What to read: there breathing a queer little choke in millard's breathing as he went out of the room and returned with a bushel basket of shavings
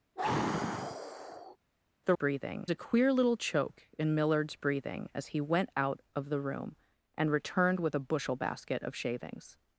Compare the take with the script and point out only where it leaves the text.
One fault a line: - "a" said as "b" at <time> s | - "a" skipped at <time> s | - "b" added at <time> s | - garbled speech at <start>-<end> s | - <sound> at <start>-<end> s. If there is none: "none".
- sigh at 0.2-1.6 s